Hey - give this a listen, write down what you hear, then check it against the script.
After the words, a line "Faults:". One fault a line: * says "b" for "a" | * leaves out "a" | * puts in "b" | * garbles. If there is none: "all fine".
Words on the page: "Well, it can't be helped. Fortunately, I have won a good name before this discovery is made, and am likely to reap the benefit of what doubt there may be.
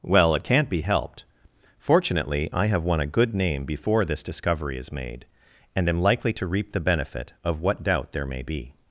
"Well, it can't be helped. Fortunately, I have won a good name before this discovery is made, and am likely to reap the benefit of what doubt there may be.
Faults:
all fine